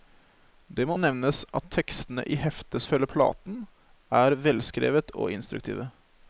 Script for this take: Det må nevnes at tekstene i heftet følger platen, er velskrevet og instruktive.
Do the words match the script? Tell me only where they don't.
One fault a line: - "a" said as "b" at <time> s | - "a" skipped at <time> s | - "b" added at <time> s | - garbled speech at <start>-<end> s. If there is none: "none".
none